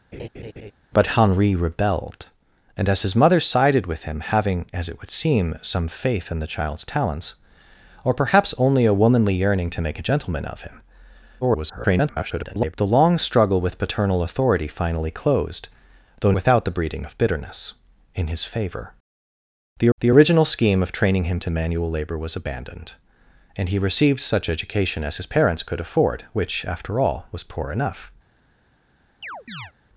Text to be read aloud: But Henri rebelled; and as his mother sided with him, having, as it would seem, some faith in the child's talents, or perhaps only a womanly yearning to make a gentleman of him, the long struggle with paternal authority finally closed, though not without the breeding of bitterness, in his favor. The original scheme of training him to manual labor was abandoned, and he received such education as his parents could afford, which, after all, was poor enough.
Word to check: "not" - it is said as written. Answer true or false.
false